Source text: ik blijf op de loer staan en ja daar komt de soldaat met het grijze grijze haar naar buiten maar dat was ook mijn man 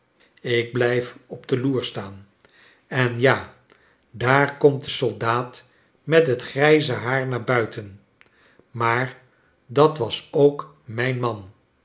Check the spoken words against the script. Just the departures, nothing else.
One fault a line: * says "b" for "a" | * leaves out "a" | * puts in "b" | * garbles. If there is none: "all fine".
* leaves out "grijze"